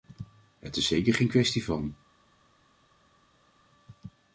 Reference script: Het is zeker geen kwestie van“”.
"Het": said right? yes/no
yes